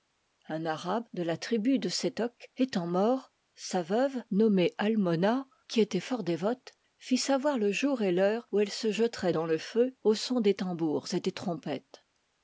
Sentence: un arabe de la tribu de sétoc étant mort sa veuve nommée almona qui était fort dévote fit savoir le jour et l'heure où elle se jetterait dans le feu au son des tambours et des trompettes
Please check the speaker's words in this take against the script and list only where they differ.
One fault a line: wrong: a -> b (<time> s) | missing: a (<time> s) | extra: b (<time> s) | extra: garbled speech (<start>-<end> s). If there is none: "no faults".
no faults